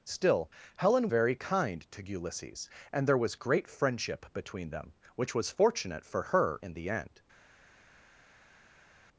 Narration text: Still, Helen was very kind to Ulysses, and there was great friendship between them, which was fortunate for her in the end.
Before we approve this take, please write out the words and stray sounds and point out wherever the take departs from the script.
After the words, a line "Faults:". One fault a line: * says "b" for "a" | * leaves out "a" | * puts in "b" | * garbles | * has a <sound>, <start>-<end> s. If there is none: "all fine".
Still, Helen very kind to Ulysses, and there was great friendship between them, which was fortunate for her in the end.
Faults:
* leaves out "was"